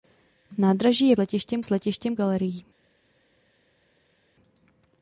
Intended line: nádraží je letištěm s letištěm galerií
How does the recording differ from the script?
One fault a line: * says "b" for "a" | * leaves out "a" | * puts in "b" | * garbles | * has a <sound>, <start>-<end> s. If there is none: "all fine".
all fine